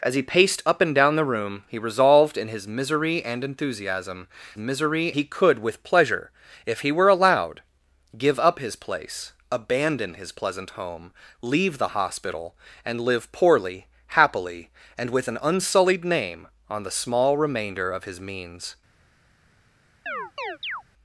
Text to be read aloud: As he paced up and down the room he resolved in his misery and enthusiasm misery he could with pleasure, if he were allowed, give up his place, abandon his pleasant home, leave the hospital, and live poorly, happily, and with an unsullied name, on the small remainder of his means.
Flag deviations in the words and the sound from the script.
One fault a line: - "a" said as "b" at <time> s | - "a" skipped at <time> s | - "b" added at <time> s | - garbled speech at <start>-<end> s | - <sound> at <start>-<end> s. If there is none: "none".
- chirp at 20.1-20.8 s